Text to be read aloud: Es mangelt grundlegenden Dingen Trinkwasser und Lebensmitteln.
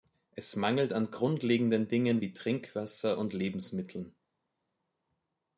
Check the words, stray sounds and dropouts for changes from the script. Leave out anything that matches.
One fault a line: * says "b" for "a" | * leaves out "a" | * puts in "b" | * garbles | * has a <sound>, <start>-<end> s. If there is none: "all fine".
* puts in "an"
* puts in "wie"